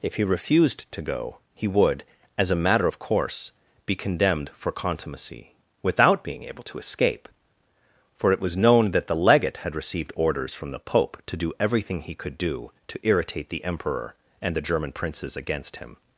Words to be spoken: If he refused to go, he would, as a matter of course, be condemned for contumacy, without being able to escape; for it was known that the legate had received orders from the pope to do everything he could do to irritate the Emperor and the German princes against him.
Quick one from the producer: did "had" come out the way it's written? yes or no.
yes